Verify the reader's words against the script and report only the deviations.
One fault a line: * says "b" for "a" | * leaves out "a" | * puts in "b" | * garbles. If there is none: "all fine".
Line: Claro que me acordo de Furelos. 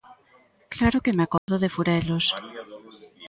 all fine